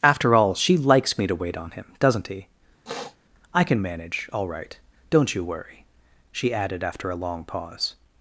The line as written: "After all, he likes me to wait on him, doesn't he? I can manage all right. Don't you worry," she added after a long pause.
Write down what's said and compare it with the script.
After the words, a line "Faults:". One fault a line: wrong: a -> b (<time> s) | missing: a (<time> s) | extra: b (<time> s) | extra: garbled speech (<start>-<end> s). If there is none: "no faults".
"After all, she likes me to wait on him, doesn't he? I can manage all right. Don't you worry," she added after a long pause.
Faults:
wrong: he -> she (0.6 s)